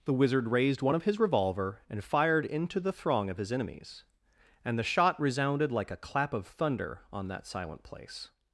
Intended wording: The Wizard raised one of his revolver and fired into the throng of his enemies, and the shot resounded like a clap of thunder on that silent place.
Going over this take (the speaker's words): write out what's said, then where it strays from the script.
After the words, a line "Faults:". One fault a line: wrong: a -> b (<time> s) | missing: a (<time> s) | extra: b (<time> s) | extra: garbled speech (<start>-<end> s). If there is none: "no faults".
The Wizard raised one of his revolver and fired into the throng of his enemies, and the shot resounded like a clap of thunder on that silent place.
Faults:
no faults